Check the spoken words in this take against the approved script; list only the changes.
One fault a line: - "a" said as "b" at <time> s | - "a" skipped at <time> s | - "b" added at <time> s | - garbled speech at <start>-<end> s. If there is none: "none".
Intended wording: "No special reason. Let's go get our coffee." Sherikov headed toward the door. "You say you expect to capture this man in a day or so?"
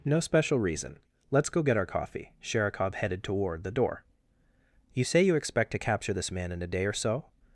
none